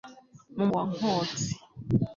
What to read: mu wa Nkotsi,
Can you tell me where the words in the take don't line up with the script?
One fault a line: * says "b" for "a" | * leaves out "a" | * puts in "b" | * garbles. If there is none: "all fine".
all fine